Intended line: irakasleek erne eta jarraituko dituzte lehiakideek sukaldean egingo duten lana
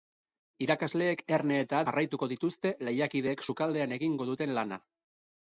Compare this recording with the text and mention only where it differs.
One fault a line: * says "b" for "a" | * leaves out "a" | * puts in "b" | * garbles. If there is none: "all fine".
all fine